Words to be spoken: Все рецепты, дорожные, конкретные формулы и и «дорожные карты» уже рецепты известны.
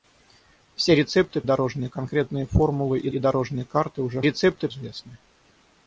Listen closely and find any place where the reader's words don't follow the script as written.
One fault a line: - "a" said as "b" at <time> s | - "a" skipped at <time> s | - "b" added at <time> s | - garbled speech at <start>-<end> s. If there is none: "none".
none